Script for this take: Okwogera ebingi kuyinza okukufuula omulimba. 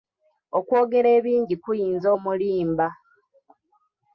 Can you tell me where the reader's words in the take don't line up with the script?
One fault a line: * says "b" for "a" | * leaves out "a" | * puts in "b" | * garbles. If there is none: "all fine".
* leaves out "okukufuula"